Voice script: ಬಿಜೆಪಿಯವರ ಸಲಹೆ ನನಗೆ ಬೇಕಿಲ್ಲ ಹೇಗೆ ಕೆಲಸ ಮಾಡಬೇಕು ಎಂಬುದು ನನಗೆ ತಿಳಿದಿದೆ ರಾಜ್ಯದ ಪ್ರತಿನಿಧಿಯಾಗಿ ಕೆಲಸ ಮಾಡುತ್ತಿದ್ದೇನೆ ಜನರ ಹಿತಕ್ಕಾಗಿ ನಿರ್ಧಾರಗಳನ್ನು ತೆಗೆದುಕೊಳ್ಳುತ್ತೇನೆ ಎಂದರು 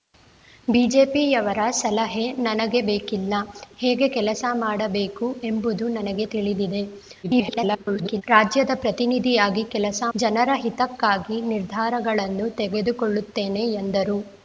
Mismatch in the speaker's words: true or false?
true